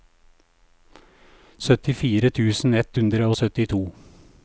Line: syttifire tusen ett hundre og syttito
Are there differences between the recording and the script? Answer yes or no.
no